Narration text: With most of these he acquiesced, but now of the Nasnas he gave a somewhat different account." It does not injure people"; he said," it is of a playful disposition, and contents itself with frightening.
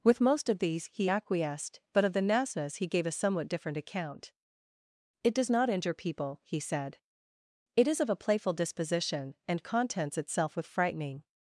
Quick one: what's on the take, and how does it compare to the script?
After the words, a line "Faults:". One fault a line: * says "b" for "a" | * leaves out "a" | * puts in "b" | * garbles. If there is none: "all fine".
With most of these he acquiesced, but of the Nasnas he gave a somewhat different account." It does not injure people"; he said," it is of a playful disposition, and contents itself with frightening.
Faults:
* leaves out "now"